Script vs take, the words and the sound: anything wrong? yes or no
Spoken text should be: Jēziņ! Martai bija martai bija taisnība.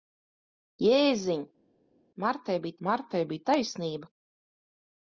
no